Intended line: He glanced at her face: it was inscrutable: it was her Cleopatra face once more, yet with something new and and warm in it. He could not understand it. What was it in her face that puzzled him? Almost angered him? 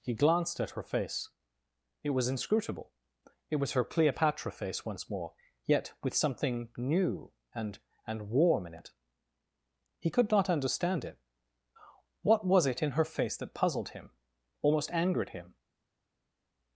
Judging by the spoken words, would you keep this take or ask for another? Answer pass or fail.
pass